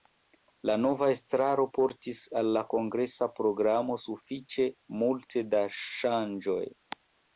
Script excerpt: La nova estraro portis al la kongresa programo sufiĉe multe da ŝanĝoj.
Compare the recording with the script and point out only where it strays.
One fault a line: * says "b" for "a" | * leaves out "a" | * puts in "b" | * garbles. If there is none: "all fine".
all fine